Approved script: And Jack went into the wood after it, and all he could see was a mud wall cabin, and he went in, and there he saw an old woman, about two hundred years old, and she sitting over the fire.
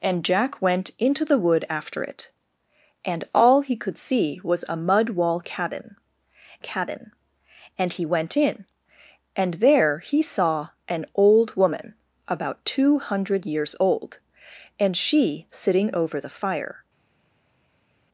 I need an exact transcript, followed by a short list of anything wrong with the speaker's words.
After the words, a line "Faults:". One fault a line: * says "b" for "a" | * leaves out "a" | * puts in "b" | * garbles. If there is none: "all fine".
And Jack went into the wood after it, and all he could see was a mud wall cabin cabin, and he went in, and there he saw an old woman, about two hundred years old, and she sitting over the fire.
Faults:
* puts in "cabin"